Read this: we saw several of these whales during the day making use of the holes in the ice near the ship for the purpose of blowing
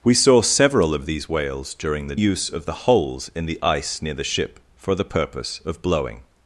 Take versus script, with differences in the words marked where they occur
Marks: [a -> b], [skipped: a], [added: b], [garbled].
we saw several of these whales during the [skipped: day making] use of the holes in the ice near the ship for the purpose of blowing